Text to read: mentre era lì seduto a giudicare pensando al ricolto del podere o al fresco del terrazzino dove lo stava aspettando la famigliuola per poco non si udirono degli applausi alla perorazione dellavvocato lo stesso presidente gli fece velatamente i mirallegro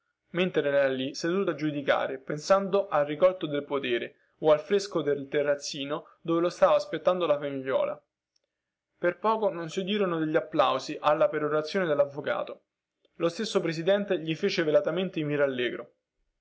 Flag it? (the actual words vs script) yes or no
no